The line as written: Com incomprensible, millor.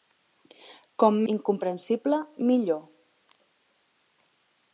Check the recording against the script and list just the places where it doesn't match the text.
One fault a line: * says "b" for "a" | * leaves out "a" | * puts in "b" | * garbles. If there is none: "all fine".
all fine